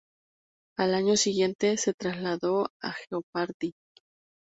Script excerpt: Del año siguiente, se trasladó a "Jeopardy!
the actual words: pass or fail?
fail